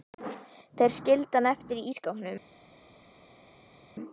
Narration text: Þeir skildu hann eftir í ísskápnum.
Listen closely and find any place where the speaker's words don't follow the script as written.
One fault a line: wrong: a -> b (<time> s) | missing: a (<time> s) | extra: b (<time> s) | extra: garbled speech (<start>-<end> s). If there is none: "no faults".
no faults